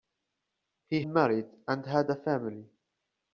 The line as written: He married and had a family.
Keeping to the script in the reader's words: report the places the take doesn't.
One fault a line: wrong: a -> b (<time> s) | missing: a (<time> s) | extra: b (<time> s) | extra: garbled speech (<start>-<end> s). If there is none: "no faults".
no faults